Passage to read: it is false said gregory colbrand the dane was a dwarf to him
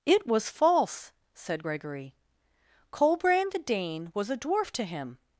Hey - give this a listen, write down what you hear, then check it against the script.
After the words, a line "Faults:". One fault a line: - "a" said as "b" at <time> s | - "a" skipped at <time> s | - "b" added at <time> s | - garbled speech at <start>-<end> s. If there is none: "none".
it was false said gregory colbrand the dane was a dwarf to him
Faults:
- "is" said as "was" at 0.2 s